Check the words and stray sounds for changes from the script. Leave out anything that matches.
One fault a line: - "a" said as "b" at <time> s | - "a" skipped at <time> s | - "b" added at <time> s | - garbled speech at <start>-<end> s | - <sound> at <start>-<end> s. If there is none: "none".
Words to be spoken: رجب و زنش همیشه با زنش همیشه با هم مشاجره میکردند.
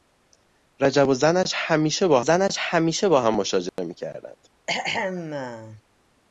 - dropout at 3.7-3.8 s
- throat clearing at 4.7-5.8 s